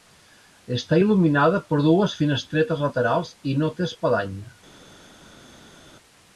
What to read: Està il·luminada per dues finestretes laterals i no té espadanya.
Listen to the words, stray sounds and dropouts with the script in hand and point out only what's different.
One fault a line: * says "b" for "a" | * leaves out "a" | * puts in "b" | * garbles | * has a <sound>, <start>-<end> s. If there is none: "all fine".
all fine